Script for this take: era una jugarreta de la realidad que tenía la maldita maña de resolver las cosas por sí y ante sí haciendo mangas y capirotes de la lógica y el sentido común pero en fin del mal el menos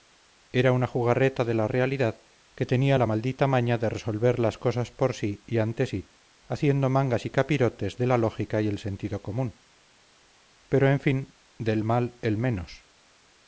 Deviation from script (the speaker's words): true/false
false